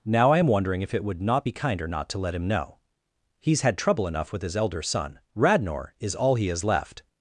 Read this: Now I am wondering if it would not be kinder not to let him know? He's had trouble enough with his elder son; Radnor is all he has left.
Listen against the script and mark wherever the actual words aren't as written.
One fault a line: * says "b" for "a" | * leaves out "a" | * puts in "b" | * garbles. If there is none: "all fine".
all fine